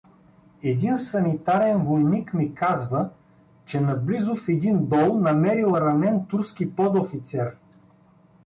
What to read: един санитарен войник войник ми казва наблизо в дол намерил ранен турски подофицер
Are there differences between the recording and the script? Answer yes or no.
yes